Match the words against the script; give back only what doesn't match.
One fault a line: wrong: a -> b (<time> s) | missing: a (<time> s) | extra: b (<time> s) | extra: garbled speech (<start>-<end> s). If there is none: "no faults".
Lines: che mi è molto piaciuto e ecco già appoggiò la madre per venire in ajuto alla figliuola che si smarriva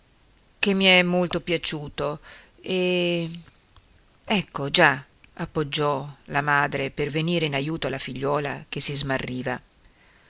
no faults